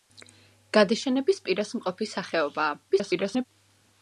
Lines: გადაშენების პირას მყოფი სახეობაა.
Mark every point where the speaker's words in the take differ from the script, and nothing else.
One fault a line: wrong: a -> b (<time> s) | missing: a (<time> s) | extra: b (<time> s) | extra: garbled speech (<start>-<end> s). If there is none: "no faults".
extra: garbled speech (2.9-3.5 s)